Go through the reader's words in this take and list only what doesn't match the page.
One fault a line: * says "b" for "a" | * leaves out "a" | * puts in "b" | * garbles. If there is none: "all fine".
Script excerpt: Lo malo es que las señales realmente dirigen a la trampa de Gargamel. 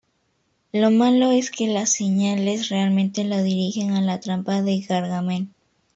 * puts in "lo"